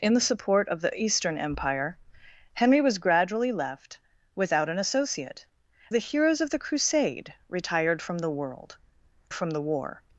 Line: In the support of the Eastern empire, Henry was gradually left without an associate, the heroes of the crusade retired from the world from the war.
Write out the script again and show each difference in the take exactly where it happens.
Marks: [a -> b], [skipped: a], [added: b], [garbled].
In the support of the Eastern empire, Henry was gradually left without an associate, the heroes of the crusade retired from the world from the war.